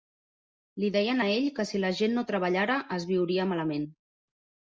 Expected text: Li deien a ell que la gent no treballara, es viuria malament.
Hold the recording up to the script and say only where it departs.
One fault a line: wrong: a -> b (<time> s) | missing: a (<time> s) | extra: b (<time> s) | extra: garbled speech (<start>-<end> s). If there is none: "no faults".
extra: si (1.7 s)